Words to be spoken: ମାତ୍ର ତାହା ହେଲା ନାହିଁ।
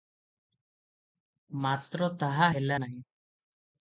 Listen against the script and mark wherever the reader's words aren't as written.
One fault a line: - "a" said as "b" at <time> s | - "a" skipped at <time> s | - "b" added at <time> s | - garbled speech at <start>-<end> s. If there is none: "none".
none